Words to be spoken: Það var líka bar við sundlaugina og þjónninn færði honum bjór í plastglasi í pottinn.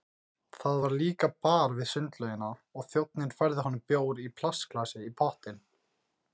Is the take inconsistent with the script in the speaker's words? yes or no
no